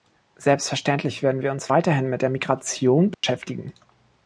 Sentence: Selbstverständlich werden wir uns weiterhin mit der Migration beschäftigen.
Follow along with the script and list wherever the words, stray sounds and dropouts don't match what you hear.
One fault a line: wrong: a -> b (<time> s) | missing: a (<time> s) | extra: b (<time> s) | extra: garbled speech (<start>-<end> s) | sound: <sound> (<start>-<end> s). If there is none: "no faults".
sound: dropout (3.1-3.2 s)